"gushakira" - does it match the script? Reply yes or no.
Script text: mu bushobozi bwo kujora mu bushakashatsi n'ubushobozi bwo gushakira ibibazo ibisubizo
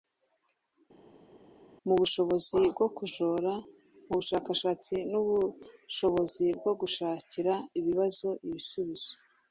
yes